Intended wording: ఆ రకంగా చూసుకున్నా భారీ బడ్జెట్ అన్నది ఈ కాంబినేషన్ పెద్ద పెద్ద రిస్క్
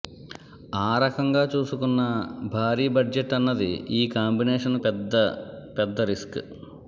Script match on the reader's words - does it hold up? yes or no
yes